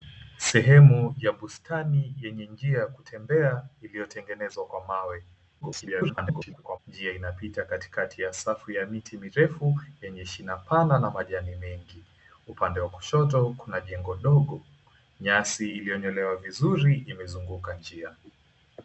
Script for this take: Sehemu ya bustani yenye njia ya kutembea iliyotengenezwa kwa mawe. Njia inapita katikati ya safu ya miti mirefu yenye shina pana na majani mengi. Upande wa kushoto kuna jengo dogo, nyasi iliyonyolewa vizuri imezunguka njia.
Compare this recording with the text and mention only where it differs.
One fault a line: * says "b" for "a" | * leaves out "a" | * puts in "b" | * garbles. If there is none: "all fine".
* garbles